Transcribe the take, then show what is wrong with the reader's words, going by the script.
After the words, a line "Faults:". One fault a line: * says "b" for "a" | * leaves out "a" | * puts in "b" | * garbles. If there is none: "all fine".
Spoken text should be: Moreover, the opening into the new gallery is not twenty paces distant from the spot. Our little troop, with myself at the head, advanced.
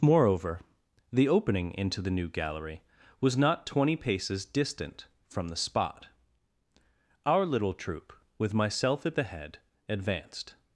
Moreover, the opening into the new gallery was not twenty paces distant from the spot. Our little troop, with myself at the head, advanced.
Faults:
* says "was" for "is"